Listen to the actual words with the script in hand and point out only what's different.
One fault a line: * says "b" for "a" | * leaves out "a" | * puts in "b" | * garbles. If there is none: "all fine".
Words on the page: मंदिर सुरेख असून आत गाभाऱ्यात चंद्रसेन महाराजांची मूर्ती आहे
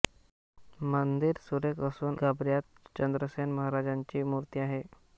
* leaves out "आत"